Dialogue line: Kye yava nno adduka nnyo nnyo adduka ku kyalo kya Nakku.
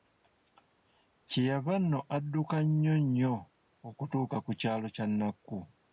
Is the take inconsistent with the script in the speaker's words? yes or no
yes